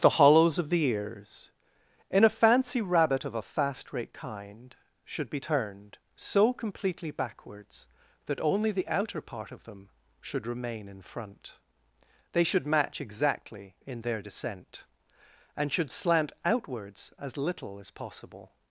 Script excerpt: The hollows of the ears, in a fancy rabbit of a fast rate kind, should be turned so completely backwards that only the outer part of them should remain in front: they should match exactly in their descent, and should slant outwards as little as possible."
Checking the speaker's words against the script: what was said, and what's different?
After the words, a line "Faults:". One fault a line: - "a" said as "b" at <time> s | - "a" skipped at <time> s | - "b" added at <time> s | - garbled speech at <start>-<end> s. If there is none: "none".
The hollows of the ears, in a fancy rabbit of a fast rate kind, should be turned so completely backwards that only the outer part of them should remain in front: they should match exactly in their descent, and should slant outwards as little as possible."
Faults:
none